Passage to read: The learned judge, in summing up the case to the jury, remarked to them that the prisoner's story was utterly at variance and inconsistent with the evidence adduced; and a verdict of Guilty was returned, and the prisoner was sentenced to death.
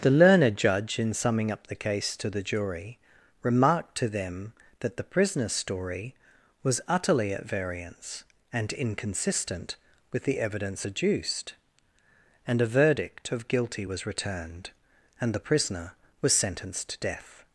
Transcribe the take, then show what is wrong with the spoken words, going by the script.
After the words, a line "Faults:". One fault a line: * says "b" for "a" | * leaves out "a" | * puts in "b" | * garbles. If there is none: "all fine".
The learned judge, in summing up the case to the jury, remarked to them that the prisoner's story was utterly at variance and inconsistent with the evidence adduced; and a verdict of Guilty was returned, and the prisoner was sentenced to death.
Faults:
all fine